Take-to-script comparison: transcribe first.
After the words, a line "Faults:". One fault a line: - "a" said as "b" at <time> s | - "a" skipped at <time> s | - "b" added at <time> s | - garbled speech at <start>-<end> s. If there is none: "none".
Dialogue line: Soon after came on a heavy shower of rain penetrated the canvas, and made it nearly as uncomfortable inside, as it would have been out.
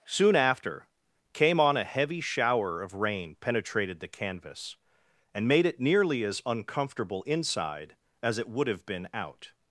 Soon after came on a heavy shower of rain penetrated the canvas, and made it nearly as uncomfortable inside, as it would have been out.
Faults:
none